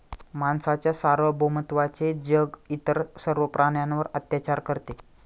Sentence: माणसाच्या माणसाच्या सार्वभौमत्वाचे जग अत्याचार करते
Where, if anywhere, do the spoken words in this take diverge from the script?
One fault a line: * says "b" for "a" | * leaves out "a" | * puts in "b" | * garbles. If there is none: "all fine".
* leaves out "माणसाच्या"
* puts in "इतर सर्व प्राण्यांवर"